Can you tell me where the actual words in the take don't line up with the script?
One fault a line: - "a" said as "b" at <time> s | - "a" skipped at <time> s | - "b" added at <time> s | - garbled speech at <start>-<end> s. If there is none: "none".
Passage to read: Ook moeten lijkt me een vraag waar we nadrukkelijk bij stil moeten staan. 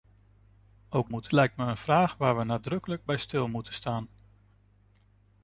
none